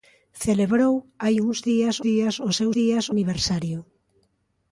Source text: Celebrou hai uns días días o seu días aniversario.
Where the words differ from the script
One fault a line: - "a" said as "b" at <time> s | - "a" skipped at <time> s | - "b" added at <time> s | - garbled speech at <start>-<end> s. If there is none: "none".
none